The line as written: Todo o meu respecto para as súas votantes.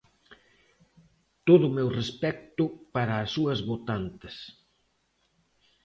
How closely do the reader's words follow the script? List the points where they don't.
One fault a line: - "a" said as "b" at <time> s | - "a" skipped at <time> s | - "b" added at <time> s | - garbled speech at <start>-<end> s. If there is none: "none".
none